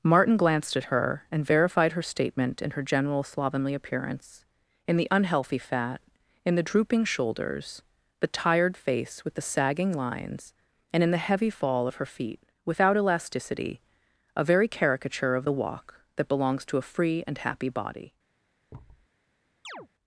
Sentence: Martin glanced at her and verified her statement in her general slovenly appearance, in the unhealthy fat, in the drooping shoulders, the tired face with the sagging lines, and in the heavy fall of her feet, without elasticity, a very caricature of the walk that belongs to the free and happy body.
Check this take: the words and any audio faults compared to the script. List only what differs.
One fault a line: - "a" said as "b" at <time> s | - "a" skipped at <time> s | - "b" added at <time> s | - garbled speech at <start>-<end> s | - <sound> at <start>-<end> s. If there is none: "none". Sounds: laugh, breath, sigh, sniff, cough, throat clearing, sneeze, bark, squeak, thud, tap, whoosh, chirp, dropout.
- "the" said as "a" at 16.8 s
- thud at 18.7-19.1 s
- chirp at 19.6-19.9 s